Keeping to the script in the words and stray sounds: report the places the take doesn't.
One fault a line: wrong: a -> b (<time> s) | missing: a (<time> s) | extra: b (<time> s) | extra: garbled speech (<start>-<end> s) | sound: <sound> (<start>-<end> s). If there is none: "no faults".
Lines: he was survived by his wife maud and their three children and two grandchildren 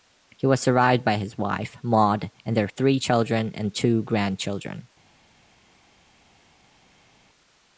no faults